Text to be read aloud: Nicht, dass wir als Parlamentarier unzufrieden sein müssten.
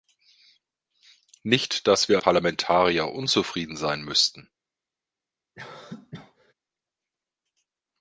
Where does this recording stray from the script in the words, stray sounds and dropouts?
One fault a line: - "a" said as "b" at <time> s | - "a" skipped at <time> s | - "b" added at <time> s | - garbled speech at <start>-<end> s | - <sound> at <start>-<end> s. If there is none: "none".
- "als" skipped at 2.2 s
- cough at 5.5-6.5 s